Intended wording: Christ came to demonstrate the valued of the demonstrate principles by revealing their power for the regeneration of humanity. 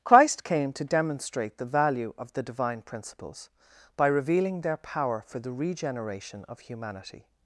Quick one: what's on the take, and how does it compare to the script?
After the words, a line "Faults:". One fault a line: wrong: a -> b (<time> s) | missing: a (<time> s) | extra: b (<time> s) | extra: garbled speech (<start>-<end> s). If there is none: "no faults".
Christ came to demonstrate the value of the divine principles by revealing their power for the regeneration of humanity.
Faults:
wrong: valued -> value (1.7 s)
wrong: demonstrate -> divine (2.4 s)